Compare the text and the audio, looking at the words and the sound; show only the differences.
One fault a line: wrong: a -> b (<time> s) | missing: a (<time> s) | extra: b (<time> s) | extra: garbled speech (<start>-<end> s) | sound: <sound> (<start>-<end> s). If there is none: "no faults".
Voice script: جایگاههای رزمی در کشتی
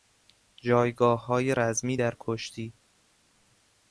no faults